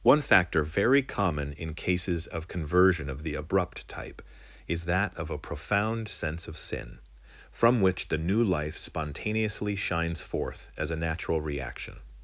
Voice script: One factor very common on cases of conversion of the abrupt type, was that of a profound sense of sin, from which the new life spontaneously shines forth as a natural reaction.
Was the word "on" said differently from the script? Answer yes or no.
yes